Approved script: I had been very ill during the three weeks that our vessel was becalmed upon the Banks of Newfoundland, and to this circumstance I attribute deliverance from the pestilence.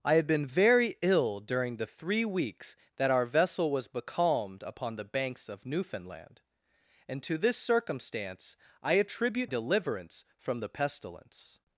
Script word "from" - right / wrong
right